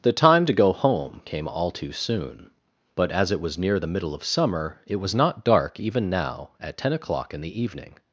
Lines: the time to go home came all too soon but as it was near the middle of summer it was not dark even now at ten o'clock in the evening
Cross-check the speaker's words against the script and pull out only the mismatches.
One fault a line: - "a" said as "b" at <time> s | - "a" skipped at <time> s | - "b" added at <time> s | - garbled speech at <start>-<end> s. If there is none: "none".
none